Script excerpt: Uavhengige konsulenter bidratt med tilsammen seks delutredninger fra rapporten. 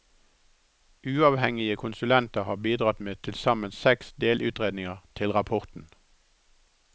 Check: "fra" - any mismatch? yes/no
yes